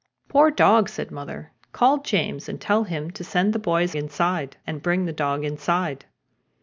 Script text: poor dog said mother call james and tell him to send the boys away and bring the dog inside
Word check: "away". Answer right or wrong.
wrong